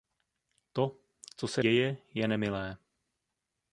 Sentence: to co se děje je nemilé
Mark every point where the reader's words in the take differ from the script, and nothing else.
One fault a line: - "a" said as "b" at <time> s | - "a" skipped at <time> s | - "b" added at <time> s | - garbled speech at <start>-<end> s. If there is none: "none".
none